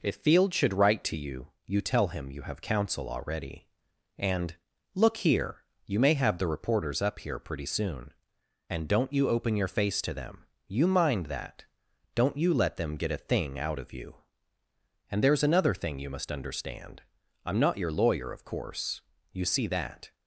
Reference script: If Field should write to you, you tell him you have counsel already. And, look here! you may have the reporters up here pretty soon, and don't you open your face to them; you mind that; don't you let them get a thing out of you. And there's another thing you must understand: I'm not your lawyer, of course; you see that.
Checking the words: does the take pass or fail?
pass